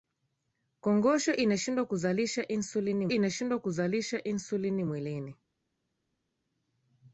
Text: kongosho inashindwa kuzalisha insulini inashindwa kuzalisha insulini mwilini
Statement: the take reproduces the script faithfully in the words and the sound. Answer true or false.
true